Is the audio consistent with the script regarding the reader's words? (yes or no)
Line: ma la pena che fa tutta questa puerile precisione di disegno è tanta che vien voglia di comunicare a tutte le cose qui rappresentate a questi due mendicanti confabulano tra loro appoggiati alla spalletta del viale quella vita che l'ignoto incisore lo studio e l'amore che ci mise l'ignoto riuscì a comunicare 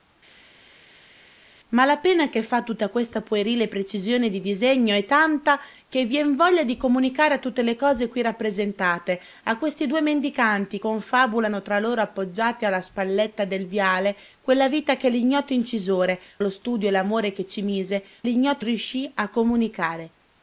yes